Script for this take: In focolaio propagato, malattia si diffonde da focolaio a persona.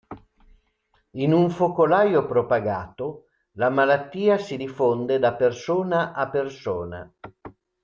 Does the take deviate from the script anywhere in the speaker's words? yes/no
yes